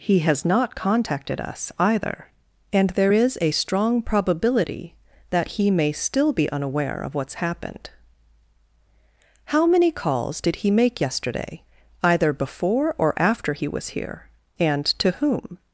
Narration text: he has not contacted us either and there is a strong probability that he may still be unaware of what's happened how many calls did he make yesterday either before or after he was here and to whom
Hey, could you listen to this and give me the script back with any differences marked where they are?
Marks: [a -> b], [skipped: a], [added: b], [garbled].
he has not contacted us either and there is a strong probability that he may still be unaware of what's happened how many calls did he make yesterday either before or after he was here and to whom